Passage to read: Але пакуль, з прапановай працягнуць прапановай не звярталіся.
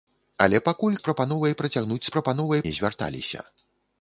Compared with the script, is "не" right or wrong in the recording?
right